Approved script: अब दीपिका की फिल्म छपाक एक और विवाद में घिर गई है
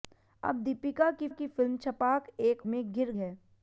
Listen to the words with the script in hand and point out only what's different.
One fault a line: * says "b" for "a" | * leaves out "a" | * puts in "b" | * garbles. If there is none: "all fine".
* puts in "की"
* leaves out "और विवाद"
* leaves out "गई"